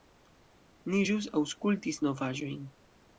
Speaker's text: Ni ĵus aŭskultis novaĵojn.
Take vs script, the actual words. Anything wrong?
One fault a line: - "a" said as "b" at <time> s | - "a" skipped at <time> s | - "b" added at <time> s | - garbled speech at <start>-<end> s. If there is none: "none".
none